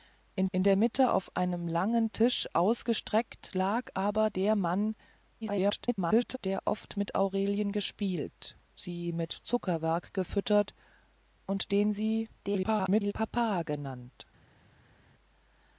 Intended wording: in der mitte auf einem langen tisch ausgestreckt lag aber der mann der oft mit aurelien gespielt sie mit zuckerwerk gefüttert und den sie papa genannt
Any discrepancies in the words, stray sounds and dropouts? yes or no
yes